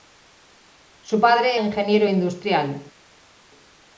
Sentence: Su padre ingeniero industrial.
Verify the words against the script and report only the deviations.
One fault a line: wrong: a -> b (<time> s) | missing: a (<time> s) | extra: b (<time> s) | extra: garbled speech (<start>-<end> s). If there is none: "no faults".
no faults